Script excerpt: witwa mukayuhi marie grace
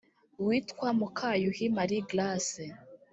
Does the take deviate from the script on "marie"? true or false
false